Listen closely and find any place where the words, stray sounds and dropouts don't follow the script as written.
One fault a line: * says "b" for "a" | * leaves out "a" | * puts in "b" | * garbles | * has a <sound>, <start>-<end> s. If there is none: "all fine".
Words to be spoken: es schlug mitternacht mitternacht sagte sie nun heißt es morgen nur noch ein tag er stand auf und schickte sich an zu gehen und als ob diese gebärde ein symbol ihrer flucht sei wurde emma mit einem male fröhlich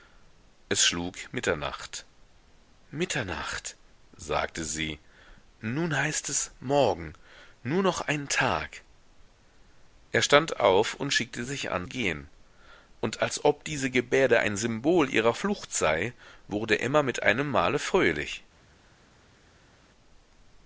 * leaves out "zu"